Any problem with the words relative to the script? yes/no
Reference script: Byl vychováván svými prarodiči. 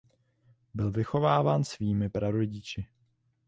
no